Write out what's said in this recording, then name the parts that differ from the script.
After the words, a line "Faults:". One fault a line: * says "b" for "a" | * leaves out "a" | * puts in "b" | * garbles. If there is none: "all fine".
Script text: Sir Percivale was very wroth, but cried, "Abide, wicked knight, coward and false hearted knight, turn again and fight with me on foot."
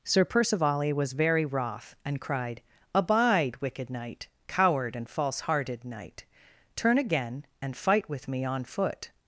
Sir Percivale was very wroth, and cried, "Abide, wicked knight, coward and false hearted knight, turn again and fight with me on foot."
Faults:
* says "and" for "but"